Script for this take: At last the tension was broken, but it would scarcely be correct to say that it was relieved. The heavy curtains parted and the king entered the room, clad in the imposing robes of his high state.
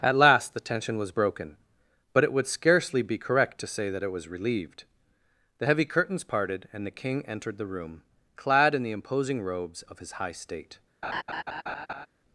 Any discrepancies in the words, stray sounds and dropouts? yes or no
yes